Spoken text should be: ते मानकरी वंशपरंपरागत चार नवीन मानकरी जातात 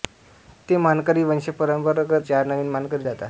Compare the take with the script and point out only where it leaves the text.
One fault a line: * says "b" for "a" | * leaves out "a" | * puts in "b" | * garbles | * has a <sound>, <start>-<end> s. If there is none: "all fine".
all fine